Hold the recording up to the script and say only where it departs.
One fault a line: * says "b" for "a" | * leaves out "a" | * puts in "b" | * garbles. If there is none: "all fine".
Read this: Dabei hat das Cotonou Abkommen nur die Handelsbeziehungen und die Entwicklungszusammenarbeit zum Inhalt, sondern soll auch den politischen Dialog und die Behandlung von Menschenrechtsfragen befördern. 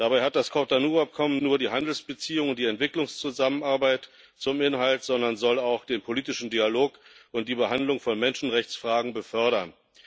all fine